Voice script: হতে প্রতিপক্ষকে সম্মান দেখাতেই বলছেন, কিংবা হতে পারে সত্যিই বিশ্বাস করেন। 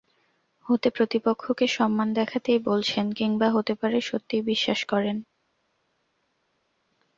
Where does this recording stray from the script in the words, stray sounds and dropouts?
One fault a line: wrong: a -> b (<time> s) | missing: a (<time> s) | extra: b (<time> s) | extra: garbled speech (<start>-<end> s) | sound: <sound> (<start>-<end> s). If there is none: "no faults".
no faults